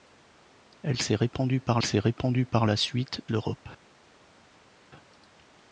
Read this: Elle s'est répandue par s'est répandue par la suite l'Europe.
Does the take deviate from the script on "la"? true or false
false